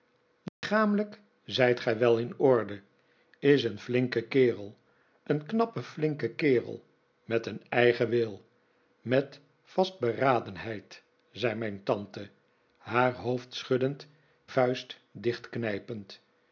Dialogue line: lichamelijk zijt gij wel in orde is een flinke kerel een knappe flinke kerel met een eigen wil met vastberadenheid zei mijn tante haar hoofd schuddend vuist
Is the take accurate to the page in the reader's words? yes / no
yes